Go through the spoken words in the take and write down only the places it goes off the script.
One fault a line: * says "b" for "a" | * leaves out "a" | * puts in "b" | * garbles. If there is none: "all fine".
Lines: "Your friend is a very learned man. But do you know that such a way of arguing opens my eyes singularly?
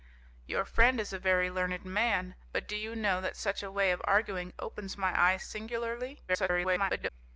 * garbles